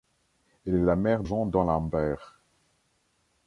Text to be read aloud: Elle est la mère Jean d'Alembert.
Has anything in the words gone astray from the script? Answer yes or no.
no